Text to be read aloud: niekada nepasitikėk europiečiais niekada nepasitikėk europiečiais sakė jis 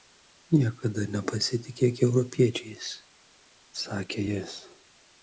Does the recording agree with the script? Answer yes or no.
no